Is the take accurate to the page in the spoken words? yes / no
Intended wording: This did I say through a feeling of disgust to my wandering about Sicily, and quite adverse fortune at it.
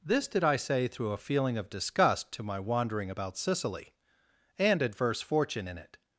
no